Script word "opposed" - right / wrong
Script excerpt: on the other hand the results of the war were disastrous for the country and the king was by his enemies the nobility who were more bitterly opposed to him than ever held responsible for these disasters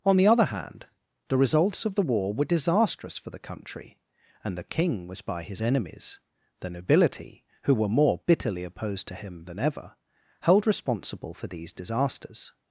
right